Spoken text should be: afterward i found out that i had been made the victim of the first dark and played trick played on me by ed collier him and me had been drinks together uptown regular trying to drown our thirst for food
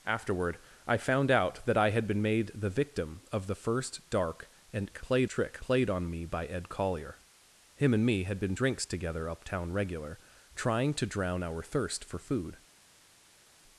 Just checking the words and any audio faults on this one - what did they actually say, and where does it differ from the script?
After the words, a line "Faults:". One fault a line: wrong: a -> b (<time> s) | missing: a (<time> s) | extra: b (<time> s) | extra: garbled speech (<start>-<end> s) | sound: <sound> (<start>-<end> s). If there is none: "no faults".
afterward i found out that i had been made the victim of the first dark and played trick played on me by ed collier him and me had been drinks together uptown regular trying to drown our thirst for food
Faults:
no faults